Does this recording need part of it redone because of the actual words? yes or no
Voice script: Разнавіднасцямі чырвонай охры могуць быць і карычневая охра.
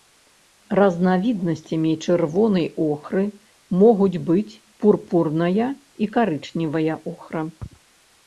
yes